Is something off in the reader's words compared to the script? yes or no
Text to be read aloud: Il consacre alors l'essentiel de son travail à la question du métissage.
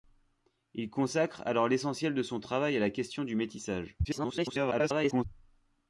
yes